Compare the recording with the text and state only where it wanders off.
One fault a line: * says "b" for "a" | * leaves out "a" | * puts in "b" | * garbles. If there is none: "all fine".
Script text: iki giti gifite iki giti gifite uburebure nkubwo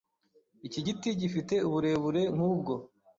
* leaves out "iki giti gifite"